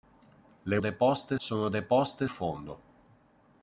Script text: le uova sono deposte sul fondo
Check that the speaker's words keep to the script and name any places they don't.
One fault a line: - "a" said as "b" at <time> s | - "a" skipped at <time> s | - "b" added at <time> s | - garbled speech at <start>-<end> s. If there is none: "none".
- "uova" said as "deposte" at 0.8 s
- "sul" skipped at 2.3 s